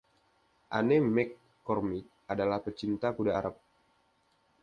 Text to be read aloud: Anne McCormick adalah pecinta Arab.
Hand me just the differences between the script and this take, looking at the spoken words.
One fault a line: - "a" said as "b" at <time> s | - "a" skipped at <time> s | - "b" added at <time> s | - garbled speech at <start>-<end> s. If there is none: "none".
- "kuda" added at 3.1 s